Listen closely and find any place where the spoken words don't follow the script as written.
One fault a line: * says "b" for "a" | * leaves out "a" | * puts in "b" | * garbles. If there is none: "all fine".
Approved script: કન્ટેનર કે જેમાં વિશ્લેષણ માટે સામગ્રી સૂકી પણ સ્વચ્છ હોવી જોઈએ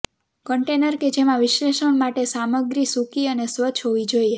* says "અને" for "પણ"